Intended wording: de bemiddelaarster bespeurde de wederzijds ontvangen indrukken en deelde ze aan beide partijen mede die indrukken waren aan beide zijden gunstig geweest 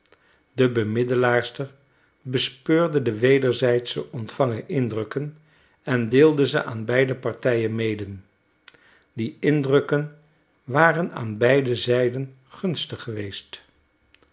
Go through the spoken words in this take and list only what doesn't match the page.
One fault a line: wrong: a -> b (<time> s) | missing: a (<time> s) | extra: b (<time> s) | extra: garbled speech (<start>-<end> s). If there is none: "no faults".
no faults